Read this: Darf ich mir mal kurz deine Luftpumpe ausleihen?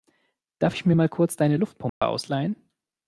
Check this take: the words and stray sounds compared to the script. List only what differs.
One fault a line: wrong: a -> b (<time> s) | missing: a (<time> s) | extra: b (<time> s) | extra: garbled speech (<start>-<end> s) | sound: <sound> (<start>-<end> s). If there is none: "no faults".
sound: dropout (1.9-2.0 s)